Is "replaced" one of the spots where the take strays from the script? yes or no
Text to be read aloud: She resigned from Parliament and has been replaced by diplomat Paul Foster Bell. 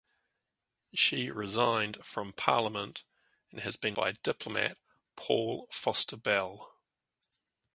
yes